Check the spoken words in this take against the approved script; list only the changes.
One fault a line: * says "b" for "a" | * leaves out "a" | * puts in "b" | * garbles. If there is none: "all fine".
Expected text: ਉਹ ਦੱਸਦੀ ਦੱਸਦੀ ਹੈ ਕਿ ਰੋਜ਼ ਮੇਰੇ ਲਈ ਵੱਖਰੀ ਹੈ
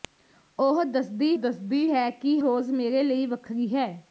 all fine